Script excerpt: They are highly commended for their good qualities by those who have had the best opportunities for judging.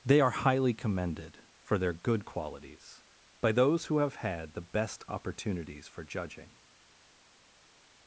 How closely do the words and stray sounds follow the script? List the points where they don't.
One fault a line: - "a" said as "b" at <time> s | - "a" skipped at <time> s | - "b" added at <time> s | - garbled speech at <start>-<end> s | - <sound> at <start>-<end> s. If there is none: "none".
none